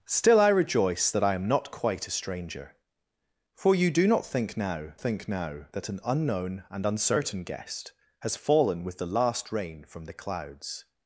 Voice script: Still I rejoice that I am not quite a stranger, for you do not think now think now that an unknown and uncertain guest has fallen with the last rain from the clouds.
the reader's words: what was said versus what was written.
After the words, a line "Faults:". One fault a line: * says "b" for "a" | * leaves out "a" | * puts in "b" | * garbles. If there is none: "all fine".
Still I rejoice that I am not quite a stranger, for you do not think now think now that an unknown and uncertain guest has fallen with the last rain from the clouds.
Faults:
all fine